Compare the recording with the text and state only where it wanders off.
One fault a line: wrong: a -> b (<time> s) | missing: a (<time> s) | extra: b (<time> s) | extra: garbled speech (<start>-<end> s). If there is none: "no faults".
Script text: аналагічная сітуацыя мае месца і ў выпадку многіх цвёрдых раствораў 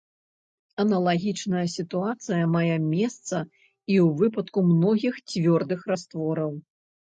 no faults